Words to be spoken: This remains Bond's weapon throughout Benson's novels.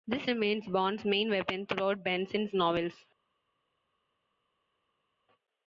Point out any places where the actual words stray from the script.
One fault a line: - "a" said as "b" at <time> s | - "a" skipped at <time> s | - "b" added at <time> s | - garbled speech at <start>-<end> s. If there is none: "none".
- "main" added at 1.0 s